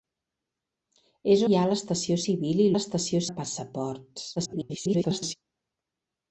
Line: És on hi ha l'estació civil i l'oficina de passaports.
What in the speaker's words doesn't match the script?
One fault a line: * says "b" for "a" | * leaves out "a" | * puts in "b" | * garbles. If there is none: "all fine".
* leaves out "on"
* says "l'estació" for "l'oficina"
* garbles